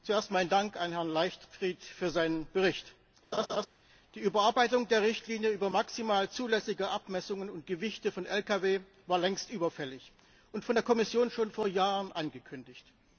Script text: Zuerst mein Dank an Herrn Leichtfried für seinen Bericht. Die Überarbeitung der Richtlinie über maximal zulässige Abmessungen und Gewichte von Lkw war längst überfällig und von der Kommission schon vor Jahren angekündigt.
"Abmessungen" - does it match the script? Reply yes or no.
yes